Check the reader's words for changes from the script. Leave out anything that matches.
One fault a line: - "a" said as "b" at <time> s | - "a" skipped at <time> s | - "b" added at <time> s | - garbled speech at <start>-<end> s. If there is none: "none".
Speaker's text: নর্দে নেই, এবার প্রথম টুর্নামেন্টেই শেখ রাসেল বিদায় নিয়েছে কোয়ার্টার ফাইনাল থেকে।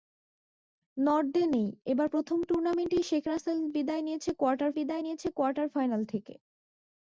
- "বিদায় নিয়েছে কোয়ার্টার" added at 4.8 s